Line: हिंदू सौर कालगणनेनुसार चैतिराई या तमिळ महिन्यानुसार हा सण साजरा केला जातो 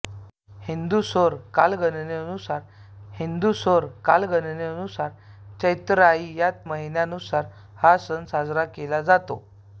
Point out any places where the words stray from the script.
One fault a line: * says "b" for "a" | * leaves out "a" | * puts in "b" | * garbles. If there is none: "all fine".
* puts in "हिंदू सौर कालगणनेनुसार"
* leaves out "तमिळ"